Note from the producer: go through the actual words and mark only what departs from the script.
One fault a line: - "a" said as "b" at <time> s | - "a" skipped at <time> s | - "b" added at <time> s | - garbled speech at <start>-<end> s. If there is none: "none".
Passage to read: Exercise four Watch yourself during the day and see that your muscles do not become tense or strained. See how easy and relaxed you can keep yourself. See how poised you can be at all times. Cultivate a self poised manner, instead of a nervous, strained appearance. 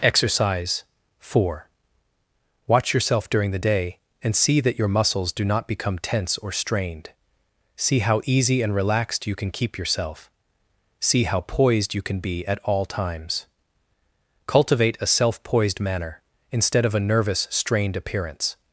none